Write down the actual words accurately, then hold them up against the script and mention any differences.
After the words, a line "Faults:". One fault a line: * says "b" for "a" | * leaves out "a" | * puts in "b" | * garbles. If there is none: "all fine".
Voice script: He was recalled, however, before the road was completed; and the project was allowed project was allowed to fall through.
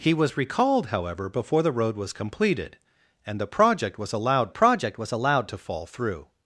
He was recalled, however, before the road was completed; and the project was allowed project was allowed to fall through.
Faults:
all fine